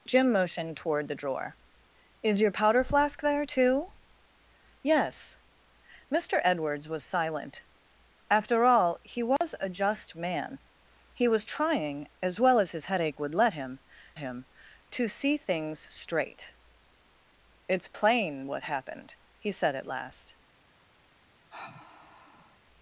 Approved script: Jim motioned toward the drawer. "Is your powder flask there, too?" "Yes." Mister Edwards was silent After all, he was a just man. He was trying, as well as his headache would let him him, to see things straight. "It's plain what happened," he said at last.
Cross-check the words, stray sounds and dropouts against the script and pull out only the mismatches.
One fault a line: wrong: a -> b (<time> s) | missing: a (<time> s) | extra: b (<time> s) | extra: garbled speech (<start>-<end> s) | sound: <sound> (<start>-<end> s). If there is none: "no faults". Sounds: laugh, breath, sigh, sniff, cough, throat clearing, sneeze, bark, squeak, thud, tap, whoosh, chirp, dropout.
sound: dropout (9.4-9.4 s)
sound: sigh (21.5-22.6 s)